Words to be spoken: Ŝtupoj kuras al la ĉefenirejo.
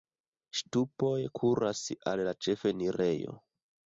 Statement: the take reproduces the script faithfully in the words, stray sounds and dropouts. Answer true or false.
true